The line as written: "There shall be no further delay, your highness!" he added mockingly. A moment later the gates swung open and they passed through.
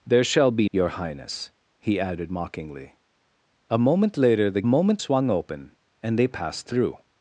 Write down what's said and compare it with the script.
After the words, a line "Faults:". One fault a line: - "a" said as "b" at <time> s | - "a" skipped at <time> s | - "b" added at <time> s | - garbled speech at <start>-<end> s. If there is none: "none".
"There shall be your highness!" he added mockingly. A moment later the moment swung open and they passed through.
Faults:
- "no further delay" skipped at 0.7 s
- "gates" said as "moment" at 4.6 s